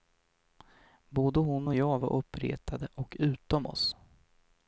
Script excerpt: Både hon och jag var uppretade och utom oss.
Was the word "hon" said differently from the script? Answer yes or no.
no